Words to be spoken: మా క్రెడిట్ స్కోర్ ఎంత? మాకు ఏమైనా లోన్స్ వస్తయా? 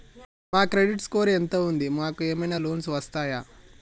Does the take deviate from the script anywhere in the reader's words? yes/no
yes